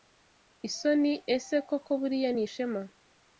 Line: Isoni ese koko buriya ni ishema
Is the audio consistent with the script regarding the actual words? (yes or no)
yes